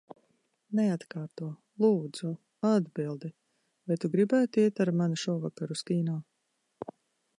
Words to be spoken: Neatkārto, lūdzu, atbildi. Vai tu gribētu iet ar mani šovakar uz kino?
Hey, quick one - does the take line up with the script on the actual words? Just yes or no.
yes